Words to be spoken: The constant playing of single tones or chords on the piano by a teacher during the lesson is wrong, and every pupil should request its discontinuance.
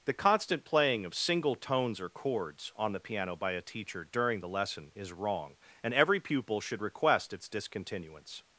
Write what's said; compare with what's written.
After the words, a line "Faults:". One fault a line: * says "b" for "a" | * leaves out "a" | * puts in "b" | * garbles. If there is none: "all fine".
The constant playing of single tones or chords on the piano by a teacher during the lesson is wrong, and every pupil should request its discontinuance.
Faults:
all fine